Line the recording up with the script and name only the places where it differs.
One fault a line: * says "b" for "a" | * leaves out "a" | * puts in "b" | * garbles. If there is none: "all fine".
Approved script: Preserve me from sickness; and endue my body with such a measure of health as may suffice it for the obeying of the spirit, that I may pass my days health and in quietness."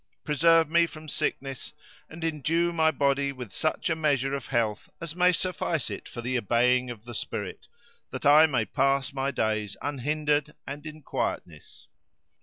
* says "unhindered" for "health"